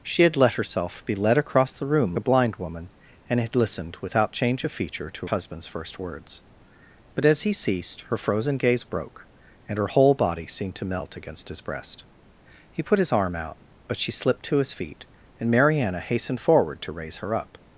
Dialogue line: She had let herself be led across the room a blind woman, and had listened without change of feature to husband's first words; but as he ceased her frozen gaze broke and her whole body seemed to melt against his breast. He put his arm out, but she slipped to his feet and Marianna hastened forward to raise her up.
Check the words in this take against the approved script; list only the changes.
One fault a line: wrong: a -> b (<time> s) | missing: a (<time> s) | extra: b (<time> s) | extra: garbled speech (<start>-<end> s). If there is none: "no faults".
no faults